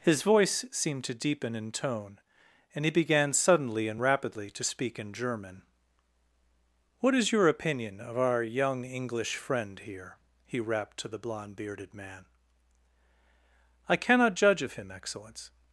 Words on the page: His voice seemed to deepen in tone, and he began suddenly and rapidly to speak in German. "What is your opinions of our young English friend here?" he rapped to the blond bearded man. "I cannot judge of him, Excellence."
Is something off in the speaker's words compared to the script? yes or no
yes